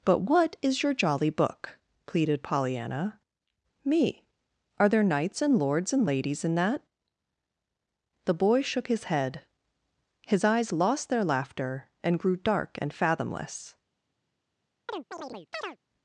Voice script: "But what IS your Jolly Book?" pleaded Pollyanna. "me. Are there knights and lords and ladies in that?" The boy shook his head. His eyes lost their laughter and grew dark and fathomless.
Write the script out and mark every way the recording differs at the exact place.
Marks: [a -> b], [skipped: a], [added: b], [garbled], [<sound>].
"But what IS your Jolly Book?" pleaded Pollyanna. "me. Are there knights and lords and ladies in that?" The boy shook his head. His eyes lost their laughter and grew dark and fathomless. [chirp]